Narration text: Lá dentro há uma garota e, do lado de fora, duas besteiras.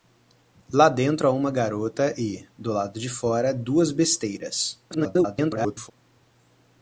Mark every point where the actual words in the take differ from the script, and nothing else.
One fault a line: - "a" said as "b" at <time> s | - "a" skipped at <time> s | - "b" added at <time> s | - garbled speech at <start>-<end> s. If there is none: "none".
- garbled speech at 4.9-5.9 s